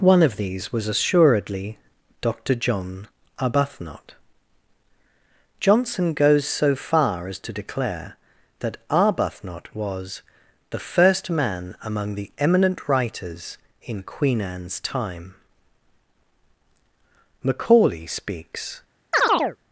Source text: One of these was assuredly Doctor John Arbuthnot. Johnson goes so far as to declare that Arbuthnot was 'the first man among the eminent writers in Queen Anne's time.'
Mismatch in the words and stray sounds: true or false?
true